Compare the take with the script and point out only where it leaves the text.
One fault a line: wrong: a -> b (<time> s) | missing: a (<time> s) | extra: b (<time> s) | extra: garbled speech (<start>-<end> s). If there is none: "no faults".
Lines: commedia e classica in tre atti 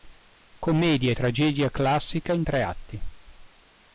extra: tragedia (1.1 s)